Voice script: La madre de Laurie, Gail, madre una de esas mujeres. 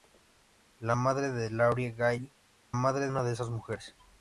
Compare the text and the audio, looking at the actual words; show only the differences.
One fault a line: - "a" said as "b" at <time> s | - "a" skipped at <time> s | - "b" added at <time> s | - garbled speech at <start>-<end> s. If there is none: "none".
none